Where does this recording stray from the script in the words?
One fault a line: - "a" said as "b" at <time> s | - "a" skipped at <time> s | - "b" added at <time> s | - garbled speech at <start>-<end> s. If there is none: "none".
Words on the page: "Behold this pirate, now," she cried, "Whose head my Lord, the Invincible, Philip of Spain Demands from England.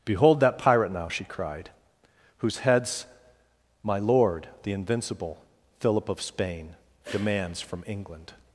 - "this" said as "that" at 0.4 s
- "head" said as "heads" at 2.6 s